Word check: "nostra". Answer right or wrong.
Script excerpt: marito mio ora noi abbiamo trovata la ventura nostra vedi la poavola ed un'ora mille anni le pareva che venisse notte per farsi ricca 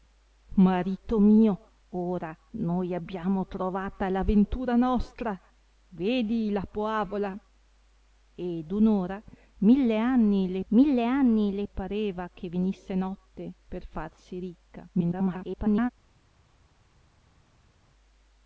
right